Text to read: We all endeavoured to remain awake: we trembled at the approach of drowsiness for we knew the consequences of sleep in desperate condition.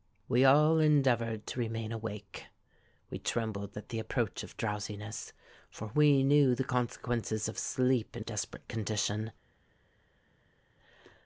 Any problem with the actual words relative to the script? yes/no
no